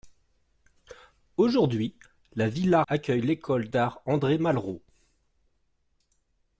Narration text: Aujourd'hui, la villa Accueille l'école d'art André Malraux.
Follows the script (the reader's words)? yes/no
yes